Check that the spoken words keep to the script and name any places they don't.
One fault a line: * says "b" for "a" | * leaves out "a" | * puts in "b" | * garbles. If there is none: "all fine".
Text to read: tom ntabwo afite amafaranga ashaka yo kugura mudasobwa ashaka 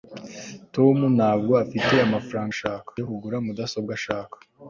all fine